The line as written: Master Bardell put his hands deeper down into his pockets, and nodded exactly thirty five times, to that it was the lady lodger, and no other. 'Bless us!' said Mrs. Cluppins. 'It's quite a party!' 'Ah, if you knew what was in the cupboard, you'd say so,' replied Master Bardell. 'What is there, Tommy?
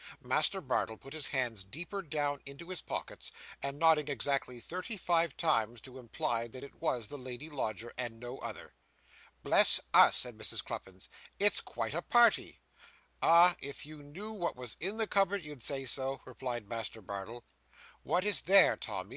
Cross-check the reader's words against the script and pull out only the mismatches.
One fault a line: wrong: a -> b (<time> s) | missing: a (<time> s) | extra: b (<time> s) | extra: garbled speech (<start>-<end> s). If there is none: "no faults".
extra: imply (6.0 s)